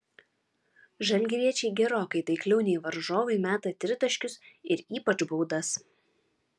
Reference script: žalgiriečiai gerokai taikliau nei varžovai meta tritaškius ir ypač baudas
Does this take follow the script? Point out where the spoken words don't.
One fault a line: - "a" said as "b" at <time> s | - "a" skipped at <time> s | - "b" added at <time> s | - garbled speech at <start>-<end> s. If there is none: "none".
none